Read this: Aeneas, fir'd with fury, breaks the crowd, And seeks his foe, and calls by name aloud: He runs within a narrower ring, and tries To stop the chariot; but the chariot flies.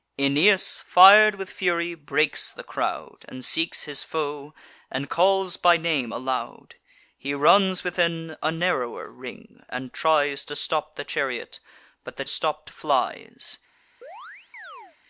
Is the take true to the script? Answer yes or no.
no